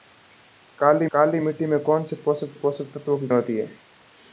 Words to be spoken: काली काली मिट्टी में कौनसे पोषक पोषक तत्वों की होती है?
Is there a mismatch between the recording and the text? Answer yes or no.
no